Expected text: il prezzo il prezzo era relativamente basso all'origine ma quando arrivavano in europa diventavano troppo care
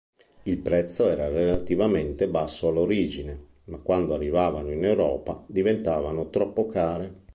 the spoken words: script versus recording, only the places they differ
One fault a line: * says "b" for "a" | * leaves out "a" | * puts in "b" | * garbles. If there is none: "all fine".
* leaves out "il prezzo"